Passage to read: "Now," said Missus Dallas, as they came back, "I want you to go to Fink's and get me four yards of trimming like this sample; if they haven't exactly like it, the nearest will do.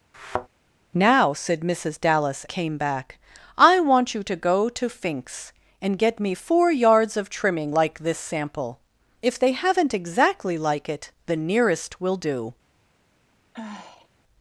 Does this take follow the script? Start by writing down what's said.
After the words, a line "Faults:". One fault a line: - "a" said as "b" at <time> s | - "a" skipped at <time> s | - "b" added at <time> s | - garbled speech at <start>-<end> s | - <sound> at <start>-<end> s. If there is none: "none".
"Now," said Missus Dallas, came back, "I want you to go to Fink's and get me four yards of trimming like this sample; if they haven't exactly like it, the nearest will do.
Faults:
- thud at 0.1-0.5 s
- "as they" skipped at 2.4 s
- sigh at 13.5-14.1 s